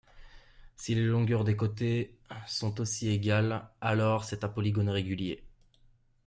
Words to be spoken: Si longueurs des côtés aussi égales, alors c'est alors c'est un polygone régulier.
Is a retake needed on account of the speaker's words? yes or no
yes